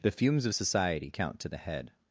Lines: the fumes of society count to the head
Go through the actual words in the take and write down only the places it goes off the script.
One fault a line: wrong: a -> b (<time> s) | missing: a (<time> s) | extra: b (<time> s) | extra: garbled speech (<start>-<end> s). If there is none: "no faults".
no faults